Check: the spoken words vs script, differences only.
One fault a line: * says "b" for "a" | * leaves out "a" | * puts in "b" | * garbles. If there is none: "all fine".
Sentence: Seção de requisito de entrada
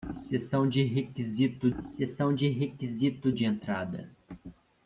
* puts in "seção de requisito"